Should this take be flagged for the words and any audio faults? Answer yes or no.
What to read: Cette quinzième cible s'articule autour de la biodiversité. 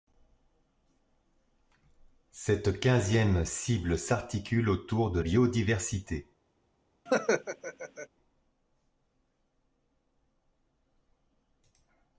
yes